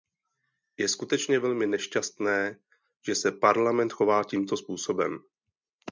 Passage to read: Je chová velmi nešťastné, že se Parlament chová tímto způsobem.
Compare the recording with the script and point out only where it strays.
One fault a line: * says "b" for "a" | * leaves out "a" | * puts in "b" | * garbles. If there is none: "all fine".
* says "skutečně" for "chová"